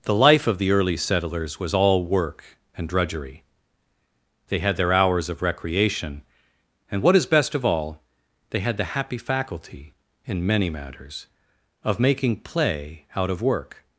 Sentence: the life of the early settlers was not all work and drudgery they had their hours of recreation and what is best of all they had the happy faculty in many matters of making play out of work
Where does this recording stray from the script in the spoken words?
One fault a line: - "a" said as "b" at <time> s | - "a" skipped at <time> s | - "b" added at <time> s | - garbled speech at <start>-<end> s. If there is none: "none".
- "not" skipped at 1.8 s